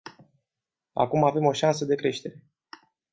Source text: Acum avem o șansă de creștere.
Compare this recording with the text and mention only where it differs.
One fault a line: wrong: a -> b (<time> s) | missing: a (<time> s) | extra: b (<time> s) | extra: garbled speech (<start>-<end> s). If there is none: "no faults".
no faults